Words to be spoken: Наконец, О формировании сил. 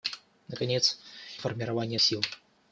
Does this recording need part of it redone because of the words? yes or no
no